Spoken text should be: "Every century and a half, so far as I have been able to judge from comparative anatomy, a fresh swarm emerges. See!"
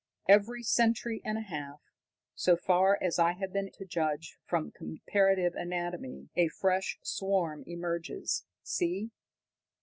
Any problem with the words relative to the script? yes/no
yes